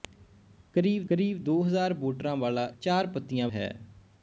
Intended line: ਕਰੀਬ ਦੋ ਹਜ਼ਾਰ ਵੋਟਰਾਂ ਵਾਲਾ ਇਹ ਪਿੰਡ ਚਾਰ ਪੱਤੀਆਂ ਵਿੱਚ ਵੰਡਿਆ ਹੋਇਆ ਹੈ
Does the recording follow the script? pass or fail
fail